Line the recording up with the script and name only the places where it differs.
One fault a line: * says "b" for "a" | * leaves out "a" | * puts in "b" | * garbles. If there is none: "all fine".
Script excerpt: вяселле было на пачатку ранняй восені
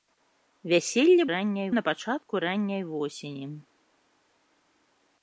* says "ранняй" for "было"